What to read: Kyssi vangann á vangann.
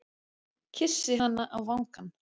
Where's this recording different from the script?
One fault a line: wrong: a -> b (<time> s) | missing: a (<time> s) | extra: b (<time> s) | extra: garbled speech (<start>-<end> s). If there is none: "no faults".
wrong: vangann -> hana (1.2 s)